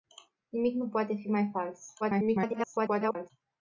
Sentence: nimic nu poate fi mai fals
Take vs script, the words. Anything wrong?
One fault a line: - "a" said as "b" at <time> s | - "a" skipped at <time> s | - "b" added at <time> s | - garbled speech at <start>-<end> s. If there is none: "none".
- garbled speech at 2.0-3.3 s